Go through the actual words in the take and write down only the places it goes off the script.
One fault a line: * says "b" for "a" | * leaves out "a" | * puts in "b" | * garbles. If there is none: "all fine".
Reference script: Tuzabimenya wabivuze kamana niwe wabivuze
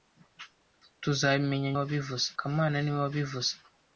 all fine